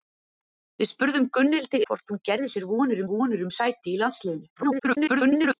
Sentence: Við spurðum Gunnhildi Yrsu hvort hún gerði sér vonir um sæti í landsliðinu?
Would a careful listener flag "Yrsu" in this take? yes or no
yes